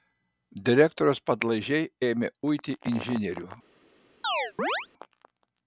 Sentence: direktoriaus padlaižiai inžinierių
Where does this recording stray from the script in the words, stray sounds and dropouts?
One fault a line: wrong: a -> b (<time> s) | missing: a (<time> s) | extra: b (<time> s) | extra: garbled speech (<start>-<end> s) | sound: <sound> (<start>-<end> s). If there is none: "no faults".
extra: ėmė uiti (2.1 s)
sound: chirp (4.2-4.9 s)